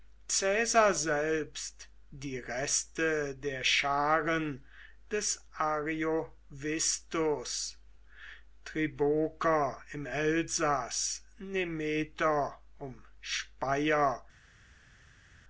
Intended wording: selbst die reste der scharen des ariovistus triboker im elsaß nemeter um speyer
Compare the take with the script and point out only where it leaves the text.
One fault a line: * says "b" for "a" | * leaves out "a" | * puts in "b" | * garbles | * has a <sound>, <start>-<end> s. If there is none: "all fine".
all fine